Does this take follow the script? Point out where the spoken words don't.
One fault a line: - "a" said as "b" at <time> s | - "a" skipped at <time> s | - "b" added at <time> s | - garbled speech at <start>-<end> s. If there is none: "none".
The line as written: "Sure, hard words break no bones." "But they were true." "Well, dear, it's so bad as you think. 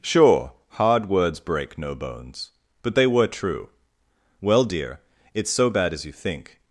none